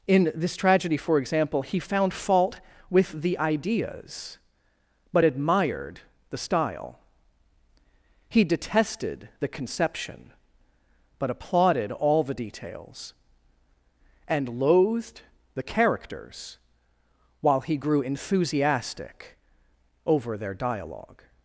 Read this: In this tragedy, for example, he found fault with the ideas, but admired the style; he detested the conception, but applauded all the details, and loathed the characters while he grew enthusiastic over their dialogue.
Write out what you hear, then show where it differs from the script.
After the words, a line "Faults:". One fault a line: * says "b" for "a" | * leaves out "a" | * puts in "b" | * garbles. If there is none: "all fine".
In this tragedy, for example, he found fault with the ideas, but admired the style; he detested the conception, but applauded all the details, and loathed the characters while he grew enthusiastic over their dialogue.
Faults:
all fine